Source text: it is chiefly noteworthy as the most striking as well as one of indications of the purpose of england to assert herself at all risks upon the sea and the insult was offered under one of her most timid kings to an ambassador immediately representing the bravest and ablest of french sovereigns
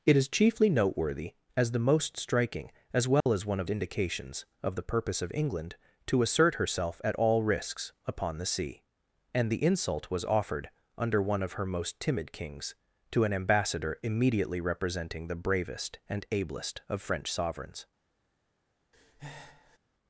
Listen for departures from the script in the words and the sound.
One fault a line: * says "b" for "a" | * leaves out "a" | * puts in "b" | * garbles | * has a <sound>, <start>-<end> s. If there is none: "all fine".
* has a dropout, 3.2-3.3 s
* has a breath, 18.9-19.8 s